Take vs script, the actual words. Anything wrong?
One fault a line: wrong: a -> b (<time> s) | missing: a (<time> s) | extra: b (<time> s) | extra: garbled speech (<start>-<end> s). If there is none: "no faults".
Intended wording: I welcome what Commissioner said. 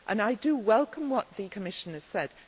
extra: the (1.4 s)